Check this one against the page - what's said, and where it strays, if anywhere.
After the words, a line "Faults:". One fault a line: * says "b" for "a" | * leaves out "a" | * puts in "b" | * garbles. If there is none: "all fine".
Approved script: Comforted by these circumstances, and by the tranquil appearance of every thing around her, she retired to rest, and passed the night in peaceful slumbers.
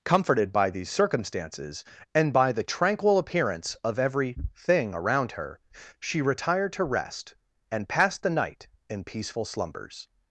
Comforted by these circumstances, and by the tranquil appearance of every thing around her, she retired to rest, and passed the night in peaceful slumbers.
Faults:
all fine